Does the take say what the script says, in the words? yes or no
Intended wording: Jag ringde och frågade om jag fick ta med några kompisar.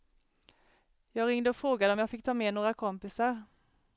yes